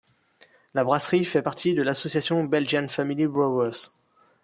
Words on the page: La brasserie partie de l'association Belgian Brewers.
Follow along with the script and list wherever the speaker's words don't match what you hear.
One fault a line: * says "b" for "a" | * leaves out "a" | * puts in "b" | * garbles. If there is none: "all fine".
* puts in "fait"
* puts in "Family"